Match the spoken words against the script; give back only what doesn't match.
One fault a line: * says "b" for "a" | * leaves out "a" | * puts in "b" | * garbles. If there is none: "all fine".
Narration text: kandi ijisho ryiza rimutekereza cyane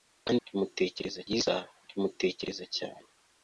* says "rimutekereza" for "ijisho"